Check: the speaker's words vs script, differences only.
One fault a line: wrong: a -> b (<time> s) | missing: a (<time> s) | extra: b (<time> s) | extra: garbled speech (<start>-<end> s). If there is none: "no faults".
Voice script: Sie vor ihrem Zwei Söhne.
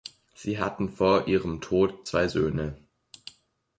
extra: hatten (0.6 s)
extra: Tod (1.6 s)